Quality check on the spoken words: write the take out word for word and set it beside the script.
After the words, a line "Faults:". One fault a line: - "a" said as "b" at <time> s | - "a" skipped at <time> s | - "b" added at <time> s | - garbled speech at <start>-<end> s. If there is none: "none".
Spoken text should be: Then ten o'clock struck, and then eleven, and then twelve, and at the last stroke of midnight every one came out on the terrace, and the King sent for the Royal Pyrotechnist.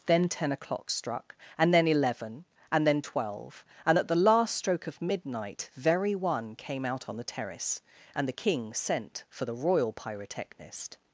Then ten o'clock struck, and then eleven, and then twelve, and at the last stroke of midnight very one came out on the terrace, and the King sent for the Royal Pyrotechnist.
Faults:
- "every" said as "very" at 5.7 s